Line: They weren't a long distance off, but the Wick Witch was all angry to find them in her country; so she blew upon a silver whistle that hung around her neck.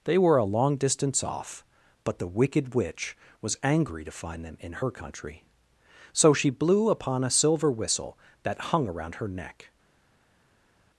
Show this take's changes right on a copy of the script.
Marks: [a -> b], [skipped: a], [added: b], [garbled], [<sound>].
They [weren't -> were] a long distance off, but the [Wick -> Wicked] Witch was [skipped: all] angry to find them in her country; so she blew upon a silver whistle that hung around her neck.